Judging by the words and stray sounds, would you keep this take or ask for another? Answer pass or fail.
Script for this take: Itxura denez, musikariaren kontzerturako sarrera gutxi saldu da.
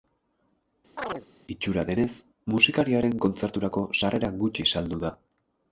fail